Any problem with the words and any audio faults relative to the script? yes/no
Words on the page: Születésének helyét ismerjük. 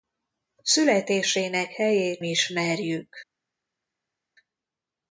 no